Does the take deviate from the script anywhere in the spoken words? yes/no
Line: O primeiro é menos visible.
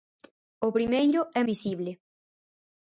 yes